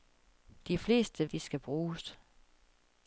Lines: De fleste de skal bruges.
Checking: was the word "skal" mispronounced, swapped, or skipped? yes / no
no